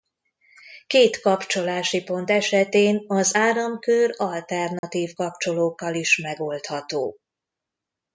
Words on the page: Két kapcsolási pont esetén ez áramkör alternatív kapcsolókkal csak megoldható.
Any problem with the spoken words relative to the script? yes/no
yes